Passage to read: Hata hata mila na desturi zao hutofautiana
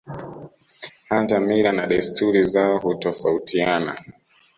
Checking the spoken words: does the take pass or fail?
fail